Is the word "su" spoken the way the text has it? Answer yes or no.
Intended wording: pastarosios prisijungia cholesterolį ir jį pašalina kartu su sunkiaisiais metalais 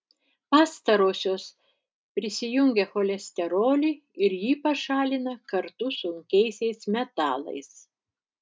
no